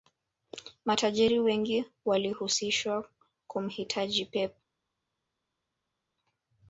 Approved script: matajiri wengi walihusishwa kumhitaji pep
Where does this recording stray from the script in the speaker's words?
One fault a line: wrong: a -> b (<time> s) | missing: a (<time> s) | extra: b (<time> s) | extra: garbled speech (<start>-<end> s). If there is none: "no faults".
no faults